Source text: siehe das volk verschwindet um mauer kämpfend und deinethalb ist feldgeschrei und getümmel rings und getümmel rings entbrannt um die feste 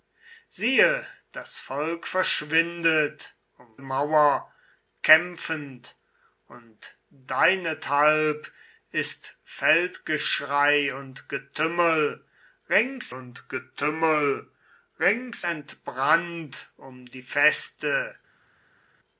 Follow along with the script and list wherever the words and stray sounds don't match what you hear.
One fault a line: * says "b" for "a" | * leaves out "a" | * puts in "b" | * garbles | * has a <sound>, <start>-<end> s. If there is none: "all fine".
all fine